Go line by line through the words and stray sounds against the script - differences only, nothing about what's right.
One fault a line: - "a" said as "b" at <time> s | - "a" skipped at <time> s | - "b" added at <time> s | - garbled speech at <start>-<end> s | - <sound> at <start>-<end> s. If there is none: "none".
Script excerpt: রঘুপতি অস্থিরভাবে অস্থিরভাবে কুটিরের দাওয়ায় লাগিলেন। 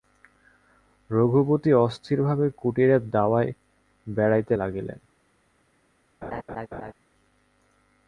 - "অস্থিরভাবে" skipped at 2.5 s
- "বেড়াইতে" added at 4.1 s
- laugh at 6.2-6.9 s